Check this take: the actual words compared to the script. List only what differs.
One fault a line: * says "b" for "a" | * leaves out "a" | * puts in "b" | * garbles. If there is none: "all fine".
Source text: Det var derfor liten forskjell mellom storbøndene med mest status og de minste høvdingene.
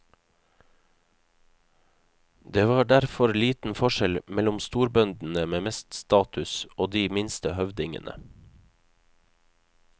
all fine